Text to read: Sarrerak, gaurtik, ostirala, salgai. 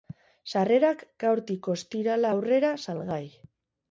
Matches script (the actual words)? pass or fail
fail